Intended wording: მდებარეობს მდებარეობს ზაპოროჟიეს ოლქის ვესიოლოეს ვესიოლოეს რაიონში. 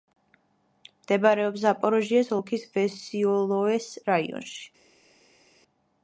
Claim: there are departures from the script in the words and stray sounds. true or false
true